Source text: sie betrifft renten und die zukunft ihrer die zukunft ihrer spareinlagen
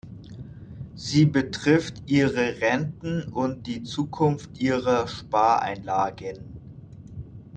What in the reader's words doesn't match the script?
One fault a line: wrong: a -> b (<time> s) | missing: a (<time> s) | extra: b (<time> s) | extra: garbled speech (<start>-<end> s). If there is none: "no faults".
extra: ihre (2.1 s)
missing: die zukunft ihrer (5.0 s)